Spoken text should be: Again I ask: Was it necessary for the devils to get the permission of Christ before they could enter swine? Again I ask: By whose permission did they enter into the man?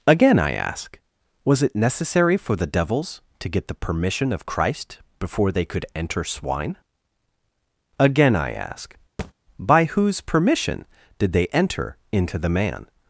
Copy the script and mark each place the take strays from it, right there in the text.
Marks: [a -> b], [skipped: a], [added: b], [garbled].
Again I ask: Was it necessary for the devils to get the permission of Christ before they could enter swine? Again I ask: By whose permission did they enter into the man?